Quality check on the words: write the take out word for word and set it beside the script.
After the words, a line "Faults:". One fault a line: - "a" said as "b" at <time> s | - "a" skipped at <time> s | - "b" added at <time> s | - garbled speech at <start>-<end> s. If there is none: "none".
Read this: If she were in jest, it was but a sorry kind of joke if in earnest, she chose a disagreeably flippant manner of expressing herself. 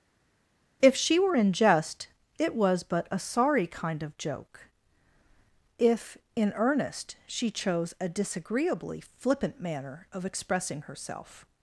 If she were in jest, it was but a sorry kind of joke if in earnest, she chose a disagreeably flippant manner of expressing herself.
Faults:
none